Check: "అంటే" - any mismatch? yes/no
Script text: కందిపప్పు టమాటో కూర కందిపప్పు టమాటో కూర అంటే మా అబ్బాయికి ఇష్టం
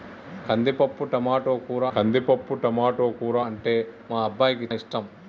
no